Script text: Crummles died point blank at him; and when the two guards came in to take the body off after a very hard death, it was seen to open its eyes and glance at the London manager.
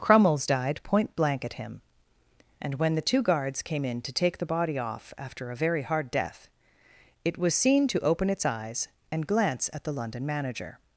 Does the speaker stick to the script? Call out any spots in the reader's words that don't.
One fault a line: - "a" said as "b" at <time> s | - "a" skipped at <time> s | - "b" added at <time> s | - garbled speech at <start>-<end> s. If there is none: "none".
none